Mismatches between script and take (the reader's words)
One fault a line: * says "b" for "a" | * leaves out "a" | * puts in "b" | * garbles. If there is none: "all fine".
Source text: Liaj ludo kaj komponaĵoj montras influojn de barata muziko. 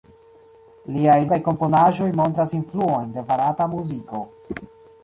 * leaves out "ludo"